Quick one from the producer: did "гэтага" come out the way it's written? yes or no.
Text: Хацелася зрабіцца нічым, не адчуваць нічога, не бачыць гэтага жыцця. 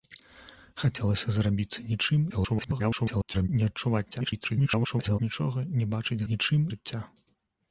no